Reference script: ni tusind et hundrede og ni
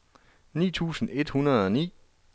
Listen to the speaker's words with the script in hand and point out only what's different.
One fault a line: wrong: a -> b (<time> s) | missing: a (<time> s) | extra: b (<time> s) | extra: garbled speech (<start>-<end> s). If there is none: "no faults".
no faults